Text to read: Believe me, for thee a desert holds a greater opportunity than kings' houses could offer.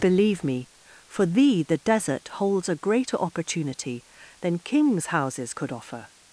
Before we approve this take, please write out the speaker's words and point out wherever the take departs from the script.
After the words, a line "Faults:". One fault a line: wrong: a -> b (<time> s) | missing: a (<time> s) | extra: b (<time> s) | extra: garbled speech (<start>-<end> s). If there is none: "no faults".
Believe me, for thee the desert holds a greater opportunity than kings' houses could offer.
Faults:
wrong: a -> the (1.6 s)